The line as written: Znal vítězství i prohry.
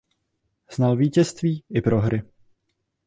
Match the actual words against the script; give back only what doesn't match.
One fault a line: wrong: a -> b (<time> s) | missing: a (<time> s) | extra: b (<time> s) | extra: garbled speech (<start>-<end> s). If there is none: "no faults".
no faults